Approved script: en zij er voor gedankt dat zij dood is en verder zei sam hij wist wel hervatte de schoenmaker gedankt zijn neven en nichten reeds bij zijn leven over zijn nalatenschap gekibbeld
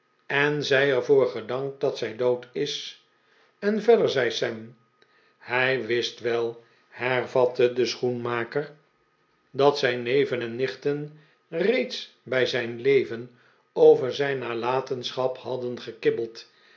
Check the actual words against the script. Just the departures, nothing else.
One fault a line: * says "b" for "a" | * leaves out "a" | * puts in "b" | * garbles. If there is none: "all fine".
* says "dat" for "gedankt"
* puts in "hadden"